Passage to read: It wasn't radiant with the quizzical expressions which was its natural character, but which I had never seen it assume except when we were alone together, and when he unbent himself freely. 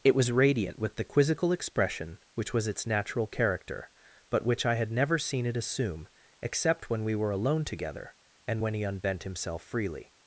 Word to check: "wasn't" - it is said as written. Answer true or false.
false